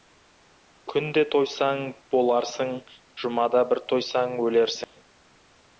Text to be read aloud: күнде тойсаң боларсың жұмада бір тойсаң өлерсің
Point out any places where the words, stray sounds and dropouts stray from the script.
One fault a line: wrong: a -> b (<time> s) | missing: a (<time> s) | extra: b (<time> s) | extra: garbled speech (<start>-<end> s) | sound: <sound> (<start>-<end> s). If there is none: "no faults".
sound: dropout (4.8-5.0 s)